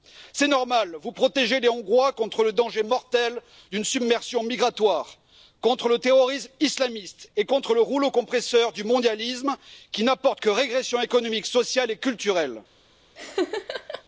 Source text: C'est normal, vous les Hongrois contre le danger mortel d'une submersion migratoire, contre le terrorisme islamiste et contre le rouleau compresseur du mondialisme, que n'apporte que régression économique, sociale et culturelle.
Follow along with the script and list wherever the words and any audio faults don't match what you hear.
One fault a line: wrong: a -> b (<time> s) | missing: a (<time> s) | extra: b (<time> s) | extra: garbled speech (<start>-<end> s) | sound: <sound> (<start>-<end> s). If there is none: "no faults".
extra: protégez (1.1 s)
wrong: que -> qui (9.9 s)
sound: laugh (13.2-14.0 s)